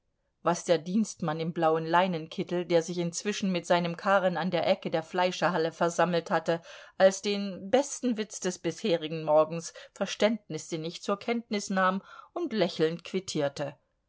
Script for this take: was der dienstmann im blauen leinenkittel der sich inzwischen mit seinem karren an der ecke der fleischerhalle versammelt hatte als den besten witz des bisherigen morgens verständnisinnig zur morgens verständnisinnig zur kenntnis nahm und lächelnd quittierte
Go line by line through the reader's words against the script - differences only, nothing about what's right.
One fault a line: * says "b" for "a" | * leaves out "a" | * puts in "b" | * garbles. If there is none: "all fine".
* leaves out "morgens verständnisinnig zur"